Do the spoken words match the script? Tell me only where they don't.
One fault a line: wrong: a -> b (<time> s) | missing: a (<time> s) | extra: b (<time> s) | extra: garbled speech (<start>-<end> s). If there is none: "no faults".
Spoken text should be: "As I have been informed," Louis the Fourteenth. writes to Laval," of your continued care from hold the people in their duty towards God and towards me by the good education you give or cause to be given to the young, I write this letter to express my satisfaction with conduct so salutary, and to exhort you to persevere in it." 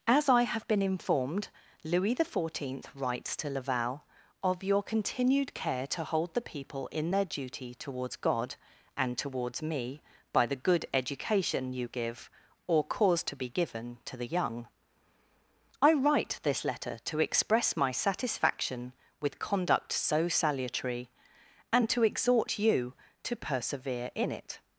wrong: from -> to (5.9 s)